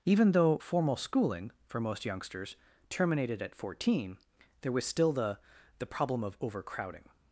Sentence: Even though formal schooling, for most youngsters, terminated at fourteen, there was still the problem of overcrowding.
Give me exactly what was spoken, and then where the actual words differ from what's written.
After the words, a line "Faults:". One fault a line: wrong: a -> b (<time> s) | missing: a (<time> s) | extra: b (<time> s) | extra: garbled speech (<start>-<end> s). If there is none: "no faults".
Even though formal schooling, for most youngsters, terminated at fourteen, there was still the the problem of overcrowding.
Faults:
extra: the (5.8 s)